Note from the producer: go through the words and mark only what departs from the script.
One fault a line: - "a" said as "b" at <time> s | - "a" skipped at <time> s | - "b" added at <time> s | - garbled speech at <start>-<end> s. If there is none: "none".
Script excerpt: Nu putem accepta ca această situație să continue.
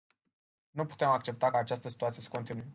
- "ca" skipped at 1.5 s